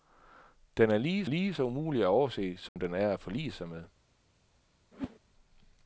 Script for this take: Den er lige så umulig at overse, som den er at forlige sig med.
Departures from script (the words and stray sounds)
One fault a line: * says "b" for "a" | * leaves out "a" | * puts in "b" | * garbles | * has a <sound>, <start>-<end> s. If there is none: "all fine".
* puts in "lige"
* has a dropout, 2.7-2.8 s
* has a whoosh, 4.9-5.2 s